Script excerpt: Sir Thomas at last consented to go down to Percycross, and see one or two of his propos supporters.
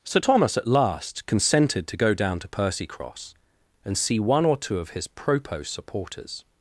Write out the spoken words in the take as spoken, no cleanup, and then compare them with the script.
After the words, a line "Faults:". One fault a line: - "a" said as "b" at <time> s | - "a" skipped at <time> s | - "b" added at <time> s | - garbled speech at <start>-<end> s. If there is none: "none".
Sir Thomas at last consented to go down to Percycross, and see one or two of his propos supporters.
Faults:
none